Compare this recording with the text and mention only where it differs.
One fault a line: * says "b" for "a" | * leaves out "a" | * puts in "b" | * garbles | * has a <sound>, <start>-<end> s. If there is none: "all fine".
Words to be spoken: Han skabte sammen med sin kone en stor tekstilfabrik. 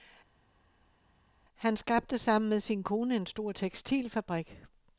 all fine